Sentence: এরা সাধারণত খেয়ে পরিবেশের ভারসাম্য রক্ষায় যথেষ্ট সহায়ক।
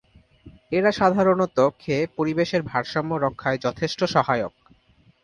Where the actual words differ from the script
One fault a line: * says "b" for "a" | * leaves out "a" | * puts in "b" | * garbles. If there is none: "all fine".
all fine